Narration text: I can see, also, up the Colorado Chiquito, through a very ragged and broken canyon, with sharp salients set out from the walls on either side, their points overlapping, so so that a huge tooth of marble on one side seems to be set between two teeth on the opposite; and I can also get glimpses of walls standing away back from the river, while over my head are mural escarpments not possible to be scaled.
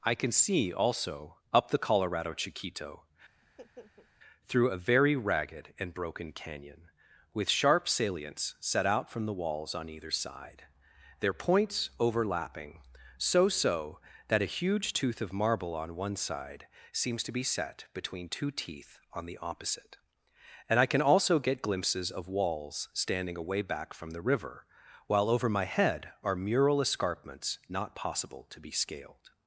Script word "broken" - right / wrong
right